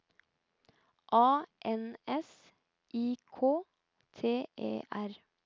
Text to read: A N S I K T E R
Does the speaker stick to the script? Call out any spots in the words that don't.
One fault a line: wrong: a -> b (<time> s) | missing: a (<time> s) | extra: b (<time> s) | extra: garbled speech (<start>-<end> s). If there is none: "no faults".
no faults